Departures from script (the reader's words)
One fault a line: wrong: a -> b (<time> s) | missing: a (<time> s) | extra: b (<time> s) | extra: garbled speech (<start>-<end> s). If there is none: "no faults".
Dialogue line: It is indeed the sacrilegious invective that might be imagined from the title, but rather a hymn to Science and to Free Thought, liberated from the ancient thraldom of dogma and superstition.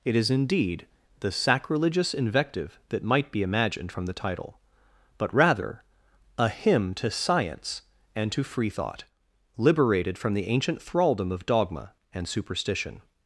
no faults